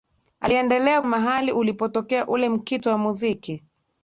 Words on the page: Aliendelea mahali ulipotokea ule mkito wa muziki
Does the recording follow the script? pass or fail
pass